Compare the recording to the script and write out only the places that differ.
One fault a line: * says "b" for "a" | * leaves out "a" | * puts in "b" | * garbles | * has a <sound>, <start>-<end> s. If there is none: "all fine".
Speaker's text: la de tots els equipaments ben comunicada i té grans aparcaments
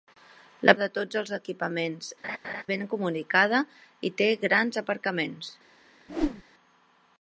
* has a laugh, 2.2-2.6 s
* has a whoosh, 6.1-6.4 s